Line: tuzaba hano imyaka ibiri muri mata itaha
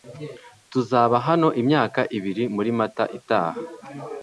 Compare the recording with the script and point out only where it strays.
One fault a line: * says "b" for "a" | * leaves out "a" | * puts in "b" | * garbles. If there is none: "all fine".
all fine